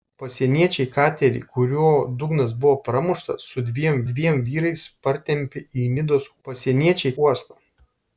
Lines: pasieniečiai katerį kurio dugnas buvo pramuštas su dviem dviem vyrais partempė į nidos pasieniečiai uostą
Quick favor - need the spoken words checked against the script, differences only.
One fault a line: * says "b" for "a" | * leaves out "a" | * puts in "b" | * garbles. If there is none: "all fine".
all fine